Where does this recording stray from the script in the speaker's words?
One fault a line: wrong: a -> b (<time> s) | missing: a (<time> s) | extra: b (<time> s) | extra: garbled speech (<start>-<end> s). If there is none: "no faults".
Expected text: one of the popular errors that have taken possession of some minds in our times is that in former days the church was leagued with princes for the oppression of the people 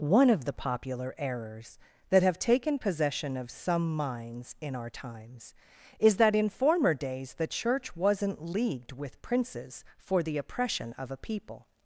wrong: was -> wasn't (8.0 s)
wrong: the -> a (11.1 s)